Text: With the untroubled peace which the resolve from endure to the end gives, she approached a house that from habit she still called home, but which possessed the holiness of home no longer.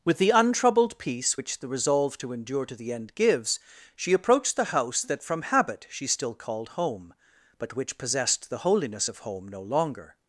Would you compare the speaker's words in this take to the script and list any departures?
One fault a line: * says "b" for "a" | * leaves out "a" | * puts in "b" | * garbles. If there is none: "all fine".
* says "to" for "from"
* says "the" for "a"